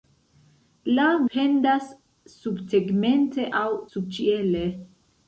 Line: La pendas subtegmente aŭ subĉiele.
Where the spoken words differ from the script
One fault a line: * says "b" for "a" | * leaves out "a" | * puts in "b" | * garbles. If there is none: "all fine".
all fine